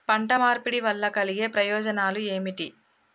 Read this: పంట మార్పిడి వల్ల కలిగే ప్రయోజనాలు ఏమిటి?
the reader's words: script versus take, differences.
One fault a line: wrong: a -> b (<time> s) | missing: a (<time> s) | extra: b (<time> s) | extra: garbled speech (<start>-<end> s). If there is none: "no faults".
no faults